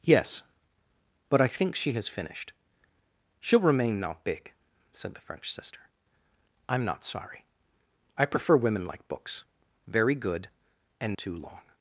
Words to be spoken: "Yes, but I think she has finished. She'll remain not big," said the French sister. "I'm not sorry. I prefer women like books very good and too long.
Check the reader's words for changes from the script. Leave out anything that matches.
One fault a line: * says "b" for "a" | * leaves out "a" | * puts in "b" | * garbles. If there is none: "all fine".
all fine